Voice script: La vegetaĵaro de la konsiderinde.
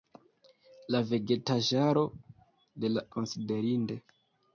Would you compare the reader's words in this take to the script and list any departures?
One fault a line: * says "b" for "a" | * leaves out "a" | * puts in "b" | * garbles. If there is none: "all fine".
all fine